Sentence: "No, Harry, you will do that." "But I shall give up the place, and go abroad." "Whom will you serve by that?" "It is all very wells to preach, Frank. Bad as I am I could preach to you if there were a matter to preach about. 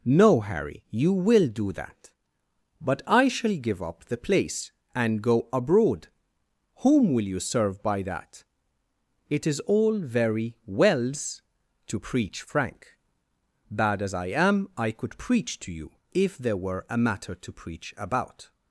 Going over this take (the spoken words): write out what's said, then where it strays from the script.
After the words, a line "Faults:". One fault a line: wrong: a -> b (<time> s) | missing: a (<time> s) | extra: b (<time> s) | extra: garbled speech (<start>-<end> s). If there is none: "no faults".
"No, Harry, you will do that." "But I shall give up the place, and go abroad." "Whom will you serve by that?" "It is all very wells to preach, Frank. Bad as I am I could preach to you if there were a matter to preach about.
Faults:
no faults